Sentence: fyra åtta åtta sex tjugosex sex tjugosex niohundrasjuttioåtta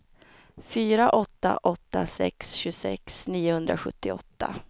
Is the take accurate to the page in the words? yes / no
no